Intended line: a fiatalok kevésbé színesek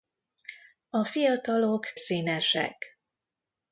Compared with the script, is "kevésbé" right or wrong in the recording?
wrong